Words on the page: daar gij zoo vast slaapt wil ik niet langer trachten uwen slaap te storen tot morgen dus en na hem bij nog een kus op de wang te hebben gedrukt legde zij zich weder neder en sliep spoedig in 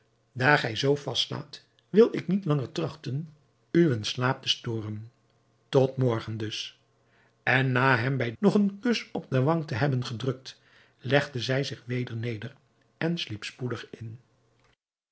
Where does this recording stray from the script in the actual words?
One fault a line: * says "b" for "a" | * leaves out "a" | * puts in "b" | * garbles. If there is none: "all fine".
all fine